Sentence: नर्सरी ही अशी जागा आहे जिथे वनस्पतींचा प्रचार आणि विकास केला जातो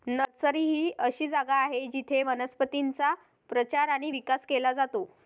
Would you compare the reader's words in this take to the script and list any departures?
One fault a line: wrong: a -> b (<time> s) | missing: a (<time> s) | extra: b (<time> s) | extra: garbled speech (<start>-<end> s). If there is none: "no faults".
no faults